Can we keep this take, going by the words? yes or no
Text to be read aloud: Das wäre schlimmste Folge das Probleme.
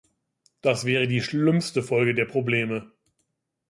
no